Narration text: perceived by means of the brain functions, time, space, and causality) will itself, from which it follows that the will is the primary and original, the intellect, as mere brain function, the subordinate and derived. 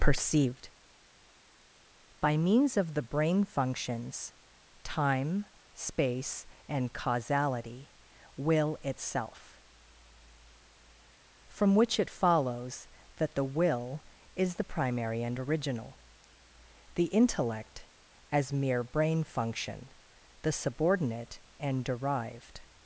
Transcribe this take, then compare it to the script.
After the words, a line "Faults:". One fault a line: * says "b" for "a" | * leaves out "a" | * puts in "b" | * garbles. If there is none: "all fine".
perceived by means of the brain functions, time, space, and causality) will itself, from which it follows that the will is the primary and original, the intellect, as mere brain function, the subordinate and derived.
Faults:
all fine